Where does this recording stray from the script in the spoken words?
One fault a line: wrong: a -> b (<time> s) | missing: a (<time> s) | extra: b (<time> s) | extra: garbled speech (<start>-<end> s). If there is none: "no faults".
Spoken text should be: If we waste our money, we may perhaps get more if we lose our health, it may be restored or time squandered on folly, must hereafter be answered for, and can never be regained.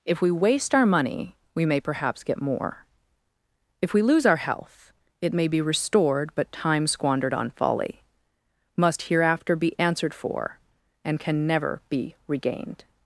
wrong: or -> but (6.3 s)